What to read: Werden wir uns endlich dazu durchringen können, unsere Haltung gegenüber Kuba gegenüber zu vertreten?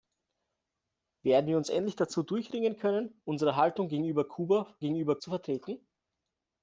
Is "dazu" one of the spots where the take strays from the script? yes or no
no